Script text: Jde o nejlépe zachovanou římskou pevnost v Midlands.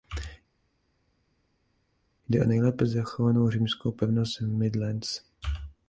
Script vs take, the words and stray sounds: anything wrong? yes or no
no